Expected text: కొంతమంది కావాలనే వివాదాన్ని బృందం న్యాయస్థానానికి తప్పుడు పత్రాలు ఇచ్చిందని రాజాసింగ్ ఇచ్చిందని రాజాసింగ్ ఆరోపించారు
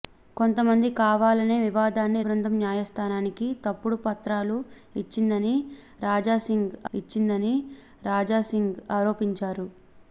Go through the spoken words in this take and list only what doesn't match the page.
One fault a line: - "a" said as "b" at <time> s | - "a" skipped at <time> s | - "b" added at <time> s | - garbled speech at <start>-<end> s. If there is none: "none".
none